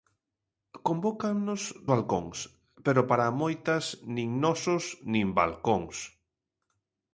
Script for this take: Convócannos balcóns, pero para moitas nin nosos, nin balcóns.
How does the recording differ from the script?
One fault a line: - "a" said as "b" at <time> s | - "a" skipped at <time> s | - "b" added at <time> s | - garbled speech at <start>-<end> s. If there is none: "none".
none